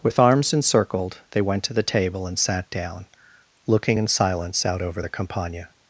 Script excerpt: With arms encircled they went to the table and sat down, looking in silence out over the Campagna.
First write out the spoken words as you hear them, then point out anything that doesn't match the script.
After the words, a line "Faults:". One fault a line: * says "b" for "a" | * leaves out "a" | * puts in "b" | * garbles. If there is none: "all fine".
With arms encircled they went to the table and sat down, looking in silence out over the Campagna.
Faults:
all fine